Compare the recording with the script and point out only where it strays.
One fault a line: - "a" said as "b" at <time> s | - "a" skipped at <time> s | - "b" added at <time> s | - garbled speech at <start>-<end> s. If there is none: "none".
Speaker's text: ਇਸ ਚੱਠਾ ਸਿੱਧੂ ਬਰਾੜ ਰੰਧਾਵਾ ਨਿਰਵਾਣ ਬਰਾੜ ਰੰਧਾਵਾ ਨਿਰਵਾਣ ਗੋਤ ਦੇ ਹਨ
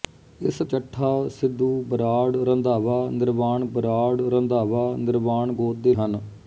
none